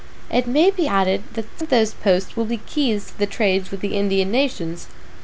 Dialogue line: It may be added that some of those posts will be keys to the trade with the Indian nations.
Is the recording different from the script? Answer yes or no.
yes